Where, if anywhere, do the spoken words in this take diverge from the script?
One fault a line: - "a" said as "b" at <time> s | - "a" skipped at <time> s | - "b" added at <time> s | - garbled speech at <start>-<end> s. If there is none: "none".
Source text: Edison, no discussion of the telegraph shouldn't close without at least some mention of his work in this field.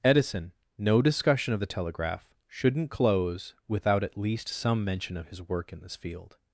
none